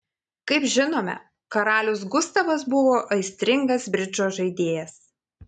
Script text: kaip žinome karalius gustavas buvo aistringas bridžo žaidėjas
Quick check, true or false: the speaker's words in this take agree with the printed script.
true